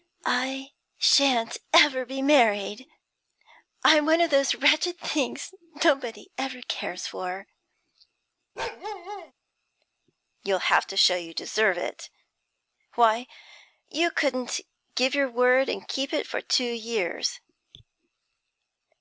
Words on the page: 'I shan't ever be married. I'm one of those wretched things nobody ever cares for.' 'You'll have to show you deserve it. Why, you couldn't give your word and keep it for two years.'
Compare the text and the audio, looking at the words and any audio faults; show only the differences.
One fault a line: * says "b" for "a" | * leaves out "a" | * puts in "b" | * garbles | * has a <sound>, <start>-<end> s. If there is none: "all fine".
* has a bark, 8.6-9.3 s